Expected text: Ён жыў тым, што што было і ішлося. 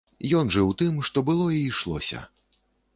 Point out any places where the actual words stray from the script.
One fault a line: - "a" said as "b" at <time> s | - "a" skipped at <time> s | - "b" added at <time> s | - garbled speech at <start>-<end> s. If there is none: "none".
- "што" skipped at 1.3 s